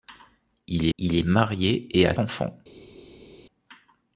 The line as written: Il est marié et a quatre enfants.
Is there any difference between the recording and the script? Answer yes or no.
yes